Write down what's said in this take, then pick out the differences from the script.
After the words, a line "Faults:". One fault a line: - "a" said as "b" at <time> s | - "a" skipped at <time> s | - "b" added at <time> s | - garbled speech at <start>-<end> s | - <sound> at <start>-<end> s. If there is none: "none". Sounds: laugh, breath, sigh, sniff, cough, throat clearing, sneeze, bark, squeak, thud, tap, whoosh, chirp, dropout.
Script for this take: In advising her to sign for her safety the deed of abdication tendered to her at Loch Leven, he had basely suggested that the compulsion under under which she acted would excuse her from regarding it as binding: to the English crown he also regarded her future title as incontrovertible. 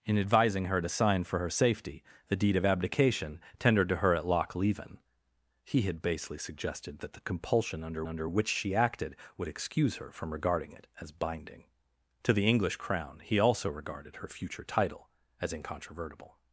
In advising her to sign for her safety the deed of abdication tendered to her at Loch Leven, he had basely suggested that the compulsion under under which she acted would excuse her from regarding it as binding: to the English crown he also regarded her future title as incontrovertible.
Faults:
none